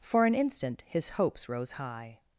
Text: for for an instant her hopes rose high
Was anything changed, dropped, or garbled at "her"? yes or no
yes